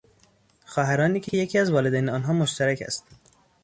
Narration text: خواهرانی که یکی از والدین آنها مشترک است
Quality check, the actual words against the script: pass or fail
fail